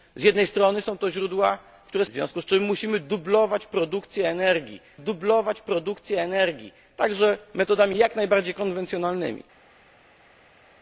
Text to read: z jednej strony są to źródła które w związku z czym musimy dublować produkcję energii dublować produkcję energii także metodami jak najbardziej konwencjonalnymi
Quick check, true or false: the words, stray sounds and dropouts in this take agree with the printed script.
true